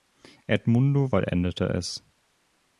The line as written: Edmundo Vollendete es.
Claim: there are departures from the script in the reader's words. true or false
false